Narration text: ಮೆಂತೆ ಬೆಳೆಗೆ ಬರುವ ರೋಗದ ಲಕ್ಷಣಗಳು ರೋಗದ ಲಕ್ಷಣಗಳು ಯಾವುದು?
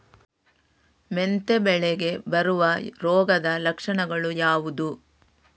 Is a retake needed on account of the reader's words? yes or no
yes